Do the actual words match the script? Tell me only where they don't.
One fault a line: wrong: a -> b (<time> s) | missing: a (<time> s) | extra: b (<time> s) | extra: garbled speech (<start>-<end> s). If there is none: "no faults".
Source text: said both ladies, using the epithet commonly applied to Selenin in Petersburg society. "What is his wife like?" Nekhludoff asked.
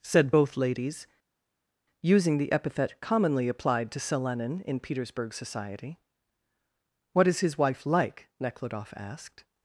no faults